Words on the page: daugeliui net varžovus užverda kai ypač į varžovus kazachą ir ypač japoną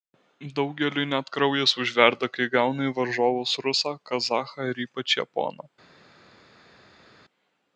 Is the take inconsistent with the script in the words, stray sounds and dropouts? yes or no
yes